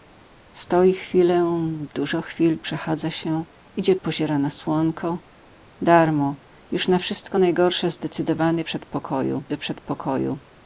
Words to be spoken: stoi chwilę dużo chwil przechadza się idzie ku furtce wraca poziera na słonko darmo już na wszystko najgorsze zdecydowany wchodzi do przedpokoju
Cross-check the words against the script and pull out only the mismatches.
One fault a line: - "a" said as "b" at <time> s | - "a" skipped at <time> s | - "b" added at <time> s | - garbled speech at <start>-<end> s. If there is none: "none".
- "ku furtce wraca" skipped at 4.0 s
- "wchodzi" said as "przedpokoju" at 8.6 s